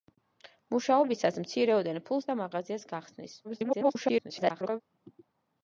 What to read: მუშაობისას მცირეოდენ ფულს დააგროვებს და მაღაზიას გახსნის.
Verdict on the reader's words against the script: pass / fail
fail